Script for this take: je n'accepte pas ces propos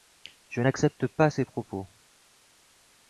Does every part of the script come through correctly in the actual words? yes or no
yes